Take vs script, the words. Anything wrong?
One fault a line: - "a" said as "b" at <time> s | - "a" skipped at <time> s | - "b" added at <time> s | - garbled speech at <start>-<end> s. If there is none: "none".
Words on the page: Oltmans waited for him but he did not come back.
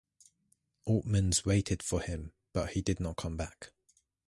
none